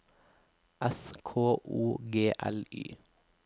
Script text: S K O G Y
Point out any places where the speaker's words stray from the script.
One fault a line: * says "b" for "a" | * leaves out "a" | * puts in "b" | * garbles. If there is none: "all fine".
* puts in "L"